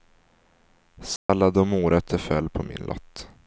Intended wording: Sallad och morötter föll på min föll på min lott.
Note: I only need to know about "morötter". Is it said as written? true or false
true